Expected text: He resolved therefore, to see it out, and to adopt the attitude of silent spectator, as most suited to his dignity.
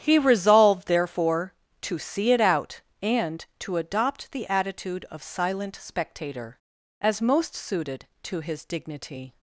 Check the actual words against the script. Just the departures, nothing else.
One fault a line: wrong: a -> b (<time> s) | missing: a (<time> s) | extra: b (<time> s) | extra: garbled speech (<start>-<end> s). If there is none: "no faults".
no faults